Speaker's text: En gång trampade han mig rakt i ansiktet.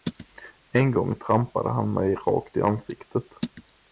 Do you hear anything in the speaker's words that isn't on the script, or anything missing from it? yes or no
no